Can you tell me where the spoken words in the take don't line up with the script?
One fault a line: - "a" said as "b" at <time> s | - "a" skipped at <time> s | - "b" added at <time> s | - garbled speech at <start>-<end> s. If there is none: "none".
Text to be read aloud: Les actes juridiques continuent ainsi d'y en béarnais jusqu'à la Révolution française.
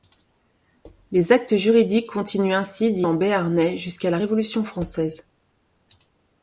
none